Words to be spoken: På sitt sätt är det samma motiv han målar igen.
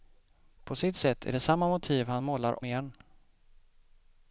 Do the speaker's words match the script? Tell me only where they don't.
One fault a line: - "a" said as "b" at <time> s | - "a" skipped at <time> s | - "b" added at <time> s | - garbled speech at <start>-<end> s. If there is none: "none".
none